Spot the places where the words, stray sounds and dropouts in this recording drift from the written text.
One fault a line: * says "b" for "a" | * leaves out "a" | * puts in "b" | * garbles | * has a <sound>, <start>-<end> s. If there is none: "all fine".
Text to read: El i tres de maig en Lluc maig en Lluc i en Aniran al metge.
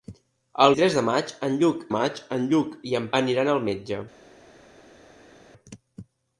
all fine